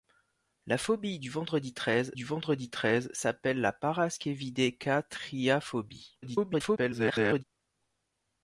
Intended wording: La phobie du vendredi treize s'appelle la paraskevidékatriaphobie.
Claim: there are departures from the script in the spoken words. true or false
true